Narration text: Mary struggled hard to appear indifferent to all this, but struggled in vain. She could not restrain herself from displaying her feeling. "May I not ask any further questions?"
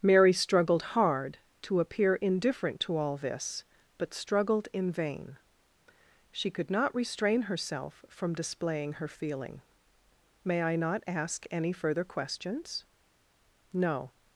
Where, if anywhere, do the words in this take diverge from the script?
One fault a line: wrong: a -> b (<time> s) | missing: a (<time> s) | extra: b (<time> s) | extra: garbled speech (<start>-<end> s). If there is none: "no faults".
extra: No (13.7 s)